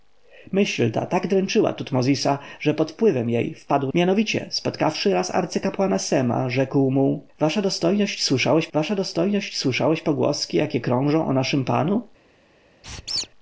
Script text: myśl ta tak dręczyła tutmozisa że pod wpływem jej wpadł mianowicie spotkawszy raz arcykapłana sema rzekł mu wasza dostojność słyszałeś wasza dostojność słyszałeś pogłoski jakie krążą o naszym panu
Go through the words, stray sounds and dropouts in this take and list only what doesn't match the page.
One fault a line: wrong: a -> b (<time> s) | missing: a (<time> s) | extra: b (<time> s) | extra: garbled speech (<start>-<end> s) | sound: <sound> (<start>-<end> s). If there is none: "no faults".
sound: squeak (12.8-13.3 s)